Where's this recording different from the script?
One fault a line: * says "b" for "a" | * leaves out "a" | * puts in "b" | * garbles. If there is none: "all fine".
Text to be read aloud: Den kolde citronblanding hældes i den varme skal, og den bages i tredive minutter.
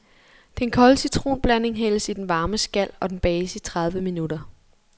all fine